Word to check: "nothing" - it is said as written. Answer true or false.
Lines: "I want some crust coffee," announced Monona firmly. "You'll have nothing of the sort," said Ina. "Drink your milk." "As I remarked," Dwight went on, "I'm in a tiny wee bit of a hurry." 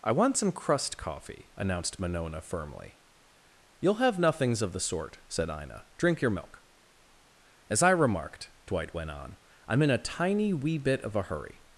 false